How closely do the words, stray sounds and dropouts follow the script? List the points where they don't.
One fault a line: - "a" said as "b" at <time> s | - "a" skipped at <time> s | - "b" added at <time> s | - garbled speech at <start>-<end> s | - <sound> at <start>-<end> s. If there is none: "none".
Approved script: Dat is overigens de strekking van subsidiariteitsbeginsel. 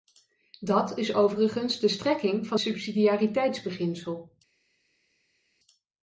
none